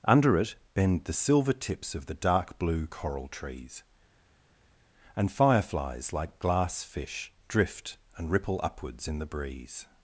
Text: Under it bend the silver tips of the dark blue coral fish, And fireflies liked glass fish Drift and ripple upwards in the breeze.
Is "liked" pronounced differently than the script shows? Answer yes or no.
yes